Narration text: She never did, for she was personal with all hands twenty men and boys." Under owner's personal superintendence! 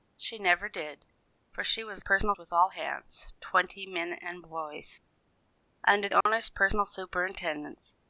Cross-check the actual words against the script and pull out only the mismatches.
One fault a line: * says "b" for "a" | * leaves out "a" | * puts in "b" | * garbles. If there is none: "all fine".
all fine